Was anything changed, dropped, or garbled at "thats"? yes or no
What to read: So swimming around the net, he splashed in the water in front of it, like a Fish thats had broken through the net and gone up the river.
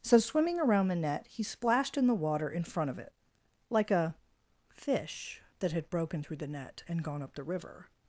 yes